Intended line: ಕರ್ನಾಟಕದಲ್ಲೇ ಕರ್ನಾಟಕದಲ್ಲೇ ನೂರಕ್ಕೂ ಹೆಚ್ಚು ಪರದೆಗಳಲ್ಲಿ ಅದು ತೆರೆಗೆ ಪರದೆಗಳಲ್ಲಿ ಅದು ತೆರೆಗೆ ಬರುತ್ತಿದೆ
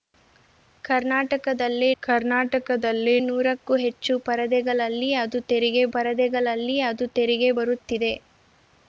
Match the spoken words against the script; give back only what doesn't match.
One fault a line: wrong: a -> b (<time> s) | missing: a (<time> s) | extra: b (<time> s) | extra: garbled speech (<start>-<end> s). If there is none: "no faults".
no faults